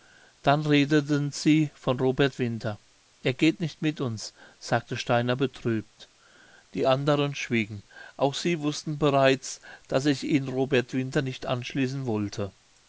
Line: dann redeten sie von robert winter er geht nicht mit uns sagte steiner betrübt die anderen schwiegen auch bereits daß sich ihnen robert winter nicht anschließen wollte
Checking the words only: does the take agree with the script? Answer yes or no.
no